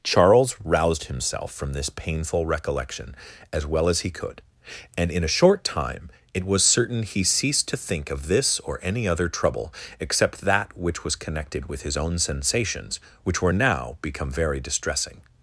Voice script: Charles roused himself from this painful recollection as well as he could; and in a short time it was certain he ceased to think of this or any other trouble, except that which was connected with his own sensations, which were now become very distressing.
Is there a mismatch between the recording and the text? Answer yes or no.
no